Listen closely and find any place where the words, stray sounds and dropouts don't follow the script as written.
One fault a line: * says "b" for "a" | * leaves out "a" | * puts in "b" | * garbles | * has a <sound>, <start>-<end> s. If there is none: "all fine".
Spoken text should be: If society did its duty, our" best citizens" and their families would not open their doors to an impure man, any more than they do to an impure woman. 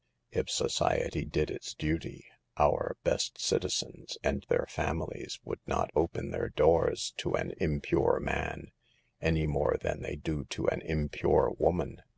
all fine